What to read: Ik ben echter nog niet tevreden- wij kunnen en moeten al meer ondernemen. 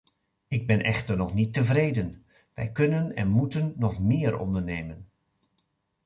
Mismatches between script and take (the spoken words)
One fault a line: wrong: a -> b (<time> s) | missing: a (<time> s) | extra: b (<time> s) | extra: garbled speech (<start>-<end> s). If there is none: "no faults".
wrong: al -> nog (3.8 s)